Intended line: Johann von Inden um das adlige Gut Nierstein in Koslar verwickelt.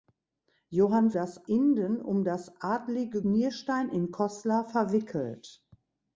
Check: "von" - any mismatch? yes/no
yes